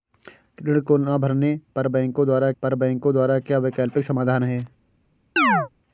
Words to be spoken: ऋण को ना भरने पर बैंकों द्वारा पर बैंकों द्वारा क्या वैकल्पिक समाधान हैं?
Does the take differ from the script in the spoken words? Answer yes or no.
no